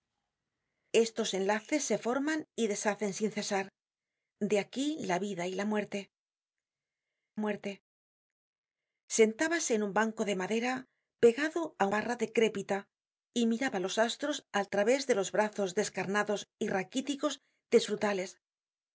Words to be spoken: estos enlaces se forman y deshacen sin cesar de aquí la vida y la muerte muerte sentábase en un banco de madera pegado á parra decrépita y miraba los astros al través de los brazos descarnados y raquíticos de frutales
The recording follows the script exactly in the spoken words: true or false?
true